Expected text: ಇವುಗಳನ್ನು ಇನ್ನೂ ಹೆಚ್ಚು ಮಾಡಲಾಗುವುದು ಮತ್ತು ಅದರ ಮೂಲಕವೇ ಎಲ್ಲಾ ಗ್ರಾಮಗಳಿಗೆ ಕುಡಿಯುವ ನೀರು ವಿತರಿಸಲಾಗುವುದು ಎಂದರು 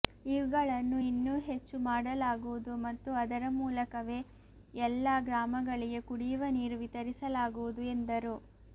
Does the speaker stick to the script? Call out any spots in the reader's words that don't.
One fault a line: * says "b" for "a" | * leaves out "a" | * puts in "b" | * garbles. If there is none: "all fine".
all fine